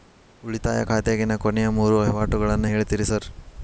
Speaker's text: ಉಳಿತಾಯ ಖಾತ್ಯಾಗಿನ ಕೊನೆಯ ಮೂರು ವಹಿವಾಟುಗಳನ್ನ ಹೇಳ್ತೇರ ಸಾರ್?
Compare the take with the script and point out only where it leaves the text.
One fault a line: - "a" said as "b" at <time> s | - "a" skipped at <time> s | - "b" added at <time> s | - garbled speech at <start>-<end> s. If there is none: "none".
none